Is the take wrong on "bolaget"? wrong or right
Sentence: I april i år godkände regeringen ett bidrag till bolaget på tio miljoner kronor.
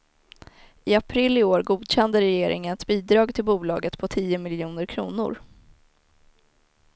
right